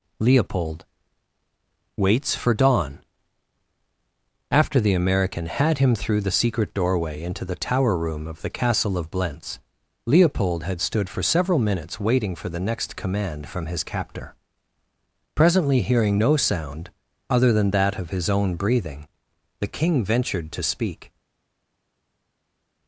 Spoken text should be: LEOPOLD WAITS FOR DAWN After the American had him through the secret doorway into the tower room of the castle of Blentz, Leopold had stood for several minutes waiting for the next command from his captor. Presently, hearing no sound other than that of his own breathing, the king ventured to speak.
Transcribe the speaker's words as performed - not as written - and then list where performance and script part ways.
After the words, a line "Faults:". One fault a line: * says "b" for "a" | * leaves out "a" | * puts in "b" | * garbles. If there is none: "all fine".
LEOPOLD WAITS FOR DAWN After the American had him through the secret doorway into the tower room of the castle of Blentz, Leopold had stood for several minutes waiting for the next command from his captor. Presently, hearing no sound other than that of his own breathing, the king ventured to speak.
Faults:
all fine